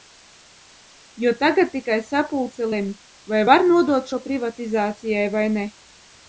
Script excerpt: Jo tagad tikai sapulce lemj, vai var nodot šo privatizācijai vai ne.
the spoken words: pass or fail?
pass